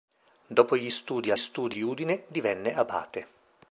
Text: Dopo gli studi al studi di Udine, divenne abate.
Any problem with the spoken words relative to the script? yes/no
no